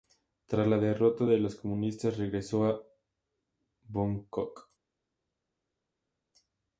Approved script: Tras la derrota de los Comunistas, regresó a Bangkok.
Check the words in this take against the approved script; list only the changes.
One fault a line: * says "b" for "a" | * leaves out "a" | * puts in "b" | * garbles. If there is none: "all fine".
all fine